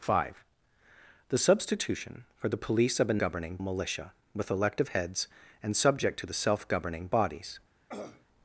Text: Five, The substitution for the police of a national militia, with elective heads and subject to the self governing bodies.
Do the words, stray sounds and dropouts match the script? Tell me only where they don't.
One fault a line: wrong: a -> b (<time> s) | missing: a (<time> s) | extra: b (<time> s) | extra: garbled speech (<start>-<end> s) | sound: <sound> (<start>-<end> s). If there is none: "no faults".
wrong: national -> governing (3.2 s)
sound: throat clearing (7.9-8.3 s)